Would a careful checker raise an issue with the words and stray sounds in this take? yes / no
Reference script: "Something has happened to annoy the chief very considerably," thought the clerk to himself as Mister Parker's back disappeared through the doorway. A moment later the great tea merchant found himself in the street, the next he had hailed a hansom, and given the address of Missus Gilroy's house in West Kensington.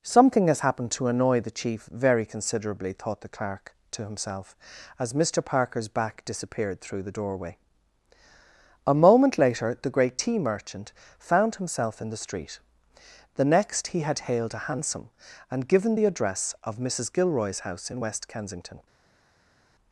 no